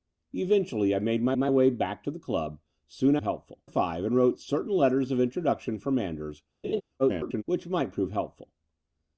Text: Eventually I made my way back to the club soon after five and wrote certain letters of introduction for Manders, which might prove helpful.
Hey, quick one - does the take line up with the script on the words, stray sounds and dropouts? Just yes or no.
no